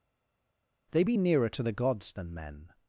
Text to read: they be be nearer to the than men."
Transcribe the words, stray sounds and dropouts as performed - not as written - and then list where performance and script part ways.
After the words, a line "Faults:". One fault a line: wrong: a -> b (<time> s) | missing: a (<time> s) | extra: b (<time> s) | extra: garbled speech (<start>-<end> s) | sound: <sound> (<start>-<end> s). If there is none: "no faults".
they be nearer to the gods than men."
Faults:
missing: be (1.2 s)
extra: gods (1.7 s)